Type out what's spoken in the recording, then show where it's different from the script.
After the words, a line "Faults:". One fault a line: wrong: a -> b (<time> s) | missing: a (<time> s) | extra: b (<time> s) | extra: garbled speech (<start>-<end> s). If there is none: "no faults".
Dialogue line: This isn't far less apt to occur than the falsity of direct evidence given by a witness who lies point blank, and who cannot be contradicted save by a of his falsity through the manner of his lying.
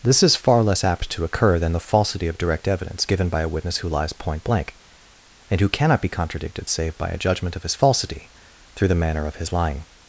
This is far less apt to occur than the falsity of direct evidence given by a witness who lies point blank, and who cannot be contradicted save by a judgment of his falsity through the manner of his lying.
Faults:
wrong: isn't -> is (0.2 s)
extra: judgment (7.2 s)